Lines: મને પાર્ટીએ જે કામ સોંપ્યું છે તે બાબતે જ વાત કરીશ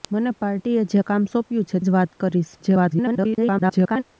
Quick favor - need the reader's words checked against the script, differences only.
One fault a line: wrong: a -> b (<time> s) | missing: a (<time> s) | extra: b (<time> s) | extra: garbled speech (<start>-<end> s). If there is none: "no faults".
missing: તે બાબતે (1.8 s)
extra: garbled speech (2.6-4.0 s)